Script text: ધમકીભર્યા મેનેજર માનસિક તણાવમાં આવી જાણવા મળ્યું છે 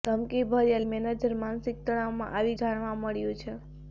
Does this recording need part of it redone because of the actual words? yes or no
no